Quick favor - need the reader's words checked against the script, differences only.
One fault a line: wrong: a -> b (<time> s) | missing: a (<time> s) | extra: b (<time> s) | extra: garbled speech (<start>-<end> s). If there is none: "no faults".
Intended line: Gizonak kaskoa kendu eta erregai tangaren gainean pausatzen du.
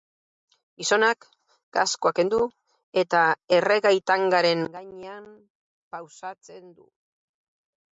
no faults